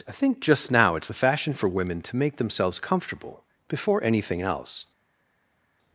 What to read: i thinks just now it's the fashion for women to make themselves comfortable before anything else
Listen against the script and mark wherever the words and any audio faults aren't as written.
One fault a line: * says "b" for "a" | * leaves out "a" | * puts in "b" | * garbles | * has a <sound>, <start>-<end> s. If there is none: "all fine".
* says "think" for "thinks"